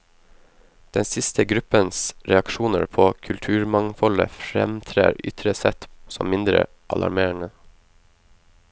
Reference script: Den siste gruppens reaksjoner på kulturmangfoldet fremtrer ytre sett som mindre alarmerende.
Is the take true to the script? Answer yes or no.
yes